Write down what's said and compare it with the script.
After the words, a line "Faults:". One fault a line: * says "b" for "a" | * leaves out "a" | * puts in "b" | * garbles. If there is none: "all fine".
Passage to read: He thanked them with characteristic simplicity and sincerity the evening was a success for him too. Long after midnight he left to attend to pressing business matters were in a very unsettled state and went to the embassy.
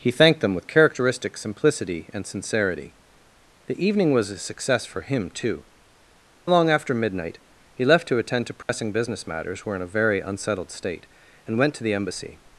He thanked them with characteristic simplicity and sincerity the evening was a success for him too. Long after midnight he left to attend to pressing business matters were in a very unsettled state and went to the embassy.
Faults:
all fine